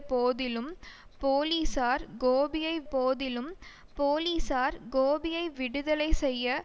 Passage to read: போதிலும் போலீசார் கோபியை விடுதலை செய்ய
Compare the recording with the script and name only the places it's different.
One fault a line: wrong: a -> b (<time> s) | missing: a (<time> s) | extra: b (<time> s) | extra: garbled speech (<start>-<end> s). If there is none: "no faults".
extra: போதிலும் போலீசார் கோபியை (2.9 s)